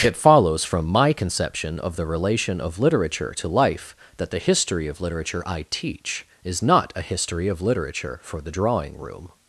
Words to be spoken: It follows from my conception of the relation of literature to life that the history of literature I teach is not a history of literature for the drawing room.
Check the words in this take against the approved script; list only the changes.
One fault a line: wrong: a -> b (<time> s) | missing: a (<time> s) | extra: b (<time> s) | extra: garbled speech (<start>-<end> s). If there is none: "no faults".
no faults